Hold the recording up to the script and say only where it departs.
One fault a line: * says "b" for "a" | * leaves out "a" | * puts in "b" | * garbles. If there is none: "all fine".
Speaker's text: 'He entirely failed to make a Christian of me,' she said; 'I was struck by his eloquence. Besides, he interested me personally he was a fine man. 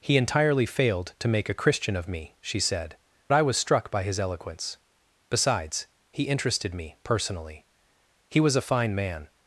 all fine